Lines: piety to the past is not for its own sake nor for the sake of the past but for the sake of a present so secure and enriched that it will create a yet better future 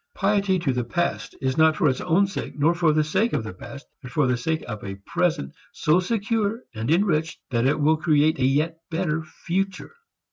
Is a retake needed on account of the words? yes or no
no